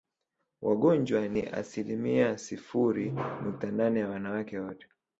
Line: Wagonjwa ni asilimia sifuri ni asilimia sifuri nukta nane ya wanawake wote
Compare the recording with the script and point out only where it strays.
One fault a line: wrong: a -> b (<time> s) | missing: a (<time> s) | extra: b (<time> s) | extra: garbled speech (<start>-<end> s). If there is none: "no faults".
missing: ni asilimia sifuri (3.1 s)